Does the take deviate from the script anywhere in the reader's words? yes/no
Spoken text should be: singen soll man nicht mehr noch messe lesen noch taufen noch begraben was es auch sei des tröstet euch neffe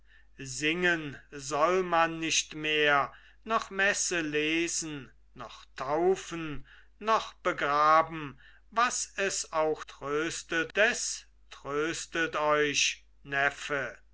yes